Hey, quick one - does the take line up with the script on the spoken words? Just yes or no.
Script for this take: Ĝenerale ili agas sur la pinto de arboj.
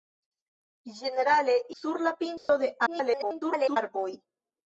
no